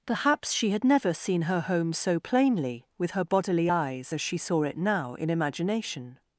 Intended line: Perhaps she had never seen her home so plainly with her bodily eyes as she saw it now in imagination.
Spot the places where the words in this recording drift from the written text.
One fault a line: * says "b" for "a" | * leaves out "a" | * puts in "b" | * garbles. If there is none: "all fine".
all fine